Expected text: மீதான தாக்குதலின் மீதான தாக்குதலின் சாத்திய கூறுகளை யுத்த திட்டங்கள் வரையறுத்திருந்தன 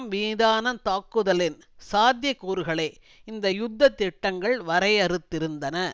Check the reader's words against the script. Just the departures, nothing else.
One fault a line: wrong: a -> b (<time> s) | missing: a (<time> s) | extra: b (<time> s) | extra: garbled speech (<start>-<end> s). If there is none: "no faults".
missing: மீதான தாக்குதலின் (1.6 s)
extra: இந்த (3.3 s)